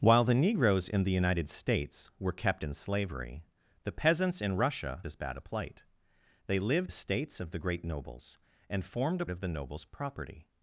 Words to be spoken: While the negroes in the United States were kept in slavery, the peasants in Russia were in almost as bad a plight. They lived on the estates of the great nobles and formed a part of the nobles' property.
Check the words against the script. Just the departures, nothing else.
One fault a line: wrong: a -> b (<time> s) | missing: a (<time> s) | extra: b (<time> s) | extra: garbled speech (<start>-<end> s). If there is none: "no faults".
missing: were in almost (5.0 s)
missing: on the (6.9 s)
missing: part (9.3 s)